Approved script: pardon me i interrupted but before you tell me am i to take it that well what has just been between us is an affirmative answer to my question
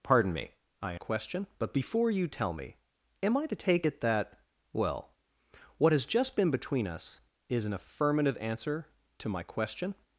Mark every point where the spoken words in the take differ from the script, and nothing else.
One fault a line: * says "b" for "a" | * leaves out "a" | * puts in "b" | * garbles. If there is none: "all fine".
* says "question" for "interrupted"